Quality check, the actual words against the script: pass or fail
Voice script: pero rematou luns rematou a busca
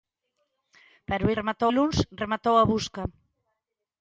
pass